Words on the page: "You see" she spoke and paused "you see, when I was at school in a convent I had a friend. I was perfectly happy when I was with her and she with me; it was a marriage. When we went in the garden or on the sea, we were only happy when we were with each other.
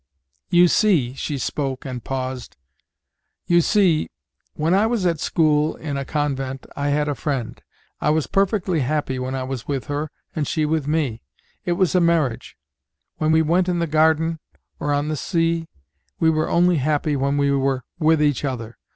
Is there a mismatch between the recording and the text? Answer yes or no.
no